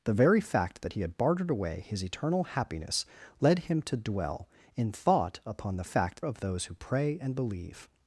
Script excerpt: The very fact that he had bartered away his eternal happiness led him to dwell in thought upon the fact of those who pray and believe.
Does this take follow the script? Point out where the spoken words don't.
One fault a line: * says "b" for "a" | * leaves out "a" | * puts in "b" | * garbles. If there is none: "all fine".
all fine